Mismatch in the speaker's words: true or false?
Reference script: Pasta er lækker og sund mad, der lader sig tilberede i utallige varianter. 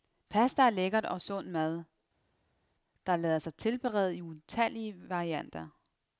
false